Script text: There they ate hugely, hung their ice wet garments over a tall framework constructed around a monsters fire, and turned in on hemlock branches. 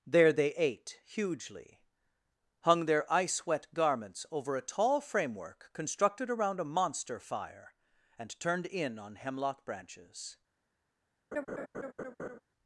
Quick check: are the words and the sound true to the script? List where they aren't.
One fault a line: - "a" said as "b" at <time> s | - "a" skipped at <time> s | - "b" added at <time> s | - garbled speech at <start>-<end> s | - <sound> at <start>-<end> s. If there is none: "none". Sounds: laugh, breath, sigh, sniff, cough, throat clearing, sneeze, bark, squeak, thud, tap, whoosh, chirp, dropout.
- "monsters" said as "monster" at 6.7 s
- laugh at 11.3-12.4 s